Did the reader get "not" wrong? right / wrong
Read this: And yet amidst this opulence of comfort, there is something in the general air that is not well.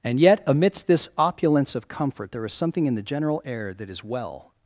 wrong